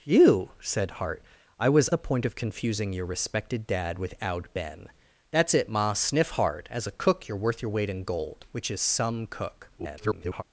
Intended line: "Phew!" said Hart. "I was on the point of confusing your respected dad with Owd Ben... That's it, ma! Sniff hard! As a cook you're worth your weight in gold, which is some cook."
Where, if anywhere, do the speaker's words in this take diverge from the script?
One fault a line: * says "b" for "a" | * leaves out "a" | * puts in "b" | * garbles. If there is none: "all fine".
* leaves out "on"
* garbles